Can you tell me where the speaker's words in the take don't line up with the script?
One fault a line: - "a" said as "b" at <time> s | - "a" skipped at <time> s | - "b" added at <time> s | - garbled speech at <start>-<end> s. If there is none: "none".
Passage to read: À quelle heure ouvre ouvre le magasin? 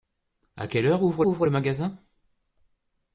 none